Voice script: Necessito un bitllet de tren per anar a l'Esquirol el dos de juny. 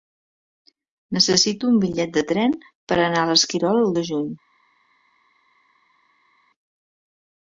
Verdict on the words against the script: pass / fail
fail